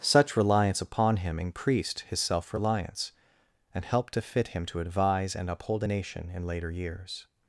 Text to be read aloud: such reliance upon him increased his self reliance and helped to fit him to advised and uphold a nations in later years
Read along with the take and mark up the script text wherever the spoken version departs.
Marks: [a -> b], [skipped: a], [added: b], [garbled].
such reliance upon him increased his self reliance and helped to fit him to [advised -> advise] and uphold a [nations -> nation] in later years